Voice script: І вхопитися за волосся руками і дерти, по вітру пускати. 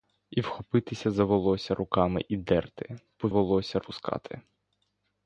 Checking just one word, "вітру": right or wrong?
wrong